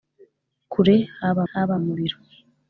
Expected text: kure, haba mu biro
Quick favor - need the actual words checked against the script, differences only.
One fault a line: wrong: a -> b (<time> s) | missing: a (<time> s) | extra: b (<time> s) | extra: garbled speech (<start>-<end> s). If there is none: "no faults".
extra: haba (1.5 s)